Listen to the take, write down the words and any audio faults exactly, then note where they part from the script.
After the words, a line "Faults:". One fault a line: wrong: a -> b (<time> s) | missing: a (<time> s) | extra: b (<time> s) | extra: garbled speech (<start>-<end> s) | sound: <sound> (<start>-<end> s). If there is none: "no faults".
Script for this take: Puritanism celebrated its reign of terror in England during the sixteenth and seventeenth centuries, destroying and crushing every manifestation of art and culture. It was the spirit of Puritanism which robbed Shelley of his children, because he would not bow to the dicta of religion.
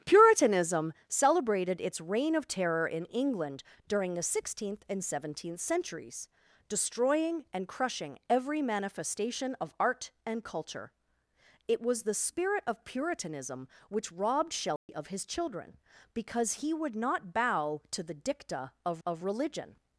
Puritanism celebrated its reign of terror in England during the sixteenth and seventeenth centuries, destroying and crushing every manifestation of art and culture. It was the spirit of Puritanism which robbed Shelley of his children, because he would not bow to the dicta of of religion.
Faults:
sound: dropout (14.8-14.9 s)
extra: of (19.0 s)